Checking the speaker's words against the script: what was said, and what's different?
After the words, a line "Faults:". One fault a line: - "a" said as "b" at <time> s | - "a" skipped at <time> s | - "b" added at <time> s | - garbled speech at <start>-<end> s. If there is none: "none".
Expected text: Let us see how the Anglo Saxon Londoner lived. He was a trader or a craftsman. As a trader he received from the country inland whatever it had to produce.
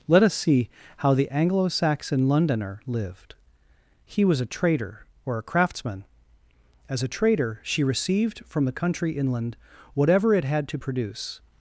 Let us see how the Anglo Saxon Londoner lived. He was a trader or a craftsman. As a trader she received from the country inland whatever it had to produce.
Faults:
- "he" said as "she" at 7.6 s